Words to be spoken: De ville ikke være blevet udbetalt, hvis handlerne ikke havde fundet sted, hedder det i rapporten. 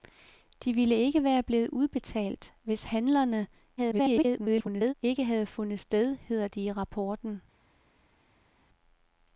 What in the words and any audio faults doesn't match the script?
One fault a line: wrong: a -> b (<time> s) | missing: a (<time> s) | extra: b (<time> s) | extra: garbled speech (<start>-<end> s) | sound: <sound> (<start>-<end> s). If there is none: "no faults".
extra: garbled speech (3.8-4.9 s)